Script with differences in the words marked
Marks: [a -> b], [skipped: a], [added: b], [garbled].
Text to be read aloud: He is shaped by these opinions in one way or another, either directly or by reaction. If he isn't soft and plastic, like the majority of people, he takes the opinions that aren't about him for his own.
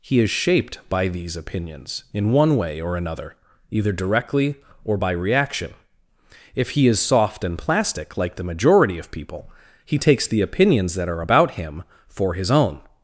He is shaped by these opinions in one way or another, either directly or by reaction. If he [isn't -> is] soft and plastic, like the majority of people, he takes the opinions that [aren't -> are] about him for his own.